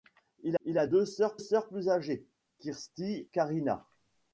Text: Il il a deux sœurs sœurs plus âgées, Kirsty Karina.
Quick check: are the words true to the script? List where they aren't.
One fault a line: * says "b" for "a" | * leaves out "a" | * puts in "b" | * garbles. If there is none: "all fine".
all fine